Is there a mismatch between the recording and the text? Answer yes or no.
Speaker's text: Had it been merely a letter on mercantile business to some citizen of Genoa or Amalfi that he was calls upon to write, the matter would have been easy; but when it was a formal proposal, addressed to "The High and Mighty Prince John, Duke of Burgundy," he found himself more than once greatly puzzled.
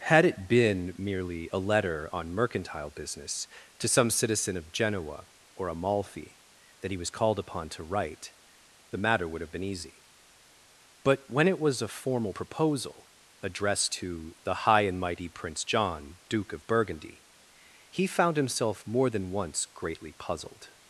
yes